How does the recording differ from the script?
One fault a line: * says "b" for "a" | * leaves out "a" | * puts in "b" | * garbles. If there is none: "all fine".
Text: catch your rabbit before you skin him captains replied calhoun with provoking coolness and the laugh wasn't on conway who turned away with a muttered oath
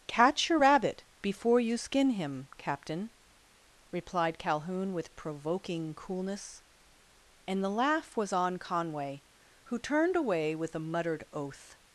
* says "captain" for "captains"
* says "was" for "wasn't"